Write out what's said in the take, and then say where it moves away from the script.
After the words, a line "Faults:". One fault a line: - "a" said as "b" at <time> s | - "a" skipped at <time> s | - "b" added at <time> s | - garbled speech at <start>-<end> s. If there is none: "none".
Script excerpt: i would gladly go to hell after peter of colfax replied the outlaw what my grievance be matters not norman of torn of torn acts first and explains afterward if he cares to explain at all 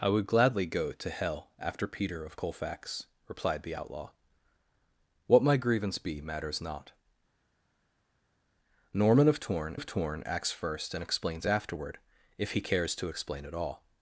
i would gladly go to hell after peter of colfax replied the outlaw what my grievance be matters not norman of torn of torn acts first and explains afterward if he cares to explain at all
Faults:
none